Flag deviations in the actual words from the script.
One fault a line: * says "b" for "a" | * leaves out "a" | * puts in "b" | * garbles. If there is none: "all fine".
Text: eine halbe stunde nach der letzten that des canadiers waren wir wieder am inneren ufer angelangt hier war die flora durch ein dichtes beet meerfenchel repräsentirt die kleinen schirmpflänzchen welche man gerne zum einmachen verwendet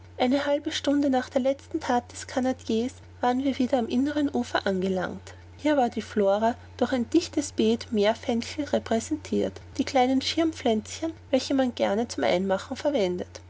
all fine